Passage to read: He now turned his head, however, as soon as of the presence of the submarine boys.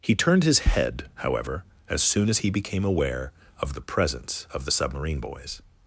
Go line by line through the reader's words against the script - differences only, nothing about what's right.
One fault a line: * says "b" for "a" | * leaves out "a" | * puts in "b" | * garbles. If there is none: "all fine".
* leaves out "now"
* puts in "he became aware"